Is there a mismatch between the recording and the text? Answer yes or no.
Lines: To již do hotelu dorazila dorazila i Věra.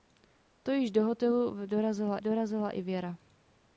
no